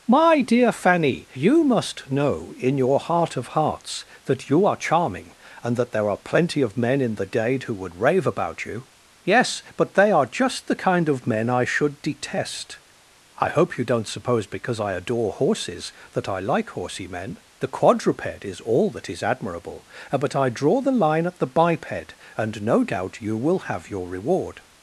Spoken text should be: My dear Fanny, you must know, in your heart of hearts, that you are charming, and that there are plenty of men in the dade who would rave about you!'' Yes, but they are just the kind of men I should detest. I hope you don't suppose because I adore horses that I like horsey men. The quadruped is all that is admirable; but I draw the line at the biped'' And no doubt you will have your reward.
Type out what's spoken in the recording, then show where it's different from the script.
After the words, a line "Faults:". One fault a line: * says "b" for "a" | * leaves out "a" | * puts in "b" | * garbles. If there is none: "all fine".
My dear Fanny, you must know, in your heart of hearts, that you are charming, and that there are plenty of men in the dade who would rave about you!'' Yes, but they are just the kind of men I should detest. I hope you don't suppose because I adore horses that I like horsey men. The quadruped is all that is admirable; but I draw the line at the biped'' And no doubt you will have your reward.
Faults:
all fine